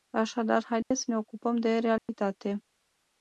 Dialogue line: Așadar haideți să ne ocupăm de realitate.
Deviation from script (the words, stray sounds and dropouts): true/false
true